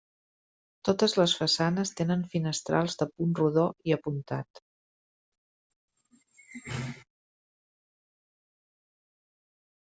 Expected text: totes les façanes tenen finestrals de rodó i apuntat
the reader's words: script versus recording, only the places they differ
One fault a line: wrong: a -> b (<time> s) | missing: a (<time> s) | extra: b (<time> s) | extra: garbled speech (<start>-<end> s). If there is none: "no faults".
extra: punt (3.1 s)